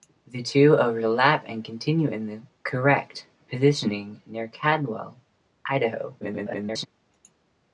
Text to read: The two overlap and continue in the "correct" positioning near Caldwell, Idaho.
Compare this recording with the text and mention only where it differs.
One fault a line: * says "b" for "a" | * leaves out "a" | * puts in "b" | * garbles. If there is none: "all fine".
* garbles